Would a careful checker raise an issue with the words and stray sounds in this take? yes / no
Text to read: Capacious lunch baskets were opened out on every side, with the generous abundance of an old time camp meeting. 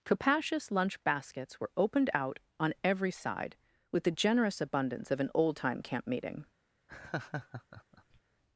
yes